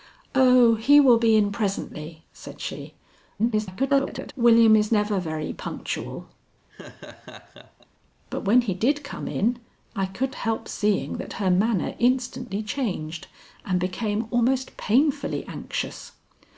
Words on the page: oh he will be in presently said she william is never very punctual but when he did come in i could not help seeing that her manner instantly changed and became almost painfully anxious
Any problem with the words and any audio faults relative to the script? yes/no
yes